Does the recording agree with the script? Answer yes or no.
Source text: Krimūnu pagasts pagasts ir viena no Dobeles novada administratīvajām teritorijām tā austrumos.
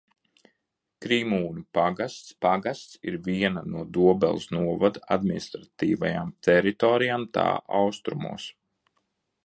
yes